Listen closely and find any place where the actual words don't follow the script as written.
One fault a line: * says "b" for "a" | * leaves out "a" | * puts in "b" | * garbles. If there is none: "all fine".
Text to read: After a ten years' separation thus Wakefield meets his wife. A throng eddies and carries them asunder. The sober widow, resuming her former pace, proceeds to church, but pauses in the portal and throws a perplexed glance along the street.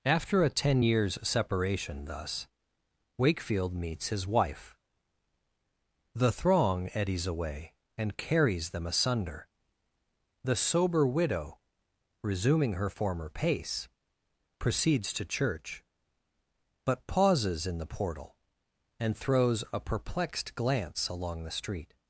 * says "The" for "A"
* puts in "away"